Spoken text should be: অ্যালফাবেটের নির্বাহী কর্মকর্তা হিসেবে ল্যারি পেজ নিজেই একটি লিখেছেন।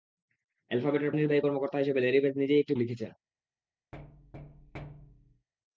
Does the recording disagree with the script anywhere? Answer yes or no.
no